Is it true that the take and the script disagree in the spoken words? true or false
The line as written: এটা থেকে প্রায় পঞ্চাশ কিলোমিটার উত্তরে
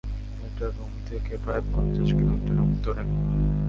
true